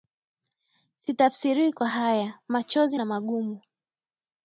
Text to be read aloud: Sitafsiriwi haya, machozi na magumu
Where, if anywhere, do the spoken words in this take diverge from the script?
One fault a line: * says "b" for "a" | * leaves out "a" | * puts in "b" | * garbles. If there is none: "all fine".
* puts in "kwa"